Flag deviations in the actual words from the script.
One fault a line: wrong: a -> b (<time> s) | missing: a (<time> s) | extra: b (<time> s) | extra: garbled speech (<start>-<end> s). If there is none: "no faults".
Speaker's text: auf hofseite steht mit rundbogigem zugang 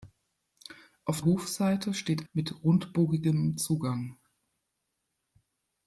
no faults